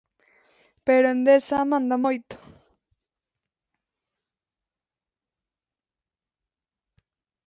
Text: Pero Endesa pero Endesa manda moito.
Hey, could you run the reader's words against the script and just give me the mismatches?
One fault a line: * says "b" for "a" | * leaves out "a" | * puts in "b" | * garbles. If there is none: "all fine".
* leaves out "pero Endesa"